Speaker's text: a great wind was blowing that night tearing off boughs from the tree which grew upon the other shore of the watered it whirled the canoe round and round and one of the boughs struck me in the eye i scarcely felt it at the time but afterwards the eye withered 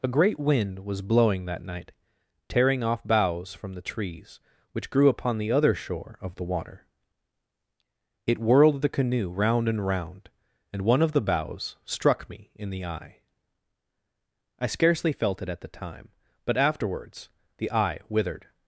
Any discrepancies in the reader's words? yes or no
yes